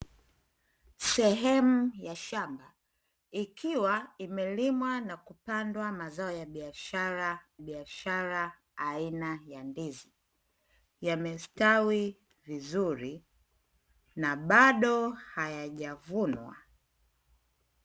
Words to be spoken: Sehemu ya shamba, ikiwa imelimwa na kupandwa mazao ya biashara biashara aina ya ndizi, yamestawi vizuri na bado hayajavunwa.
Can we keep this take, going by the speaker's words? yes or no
yes